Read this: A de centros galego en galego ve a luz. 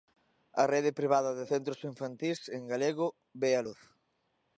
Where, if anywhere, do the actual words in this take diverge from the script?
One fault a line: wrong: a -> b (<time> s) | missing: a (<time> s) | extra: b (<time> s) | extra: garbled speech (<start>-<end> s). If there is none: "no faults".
extra: rede privada (0.7 s)
wrong: galego -> infantís (1.9 s)